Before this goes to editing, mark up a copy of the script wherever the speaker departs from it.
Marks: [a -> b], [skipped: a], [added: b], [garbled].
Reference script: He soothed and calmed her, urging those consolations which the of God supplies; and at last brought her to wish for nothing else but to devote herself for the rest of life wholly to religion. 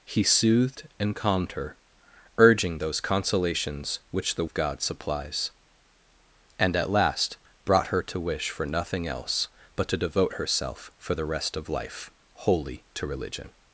He soothed and calmed her, urging those consolations which the of God supplies; and at last brought her to wish for nothing else but to devote herself for the rest of life wholly to religion.